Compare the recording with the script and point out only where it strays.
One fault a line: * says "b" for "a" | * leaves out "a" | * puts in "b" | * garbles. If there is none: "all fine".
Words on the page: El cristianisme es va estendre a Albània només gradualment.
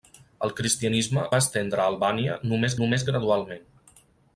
* leaves out "es"
* puts in "només"